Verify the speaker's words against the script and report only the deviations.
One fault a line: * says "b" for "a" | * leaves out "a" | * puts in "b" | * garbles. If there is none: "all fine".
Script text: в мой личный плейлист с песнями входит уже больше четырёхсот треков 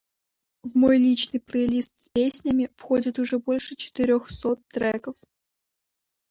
all fine